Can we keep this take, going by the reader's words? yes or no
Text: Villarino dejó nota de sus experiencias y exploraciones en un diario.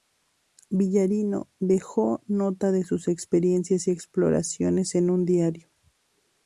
yes